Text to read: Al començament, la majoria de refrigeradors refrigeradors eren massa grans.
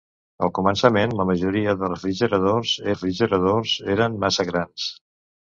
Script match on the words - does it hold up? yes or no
yes